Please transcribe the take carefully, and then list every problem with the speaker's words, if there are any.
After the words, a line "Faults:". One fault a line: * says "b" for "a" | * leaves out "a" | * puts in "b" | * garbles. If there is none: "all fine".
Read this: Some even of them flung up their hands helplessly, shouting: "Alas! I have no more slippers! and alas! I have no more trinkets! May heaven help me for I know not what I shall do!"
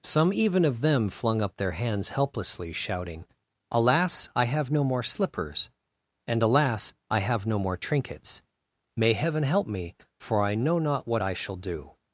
Some even of them flung up their hands helplessly, shouting: "Alas! I have no more slippers! and alas! I have no more trinkets! May heaven help me for I know not what I shall do!"
Faults:
all fine